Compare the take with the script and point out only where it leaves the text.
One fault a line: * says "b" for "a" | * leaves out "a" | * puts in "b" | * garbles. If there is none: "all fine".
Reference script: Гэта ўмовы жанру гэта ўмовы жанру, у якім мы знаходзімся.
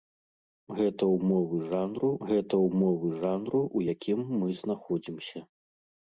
all fine